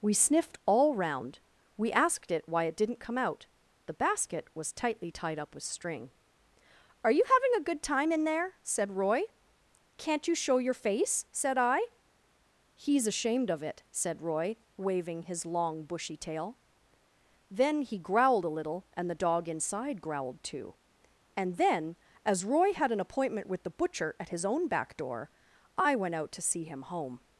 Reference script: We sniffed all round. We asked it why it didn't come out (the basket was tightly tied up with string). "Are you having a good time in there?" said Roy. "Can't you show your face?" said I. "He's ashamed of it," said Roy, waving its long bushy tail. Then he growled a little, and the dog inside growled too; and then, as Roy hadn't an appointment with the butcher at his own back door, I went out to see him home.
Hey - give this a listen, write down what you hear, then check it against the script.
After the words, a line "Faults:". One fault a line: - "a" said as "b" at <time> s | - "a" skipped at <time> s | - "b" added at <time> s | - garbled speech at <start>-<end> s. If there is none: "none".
We sniffed all round. We asked it why it didn't come out (the basket was tightly tied up with string). "Are you having a good time in there?" said Roy. "Can't you show your face?" said I. "He's ashamed of it," said Roy, waving his long bushy tail. Then he growled a little, and the dog inside growled too; and then, as Roy had an appointment with the butcher at his own back door, I went out to see him home.
Faults:
- "its" said as "his" at 15.2 s
- "hadn't" said as "had" at 22.7 s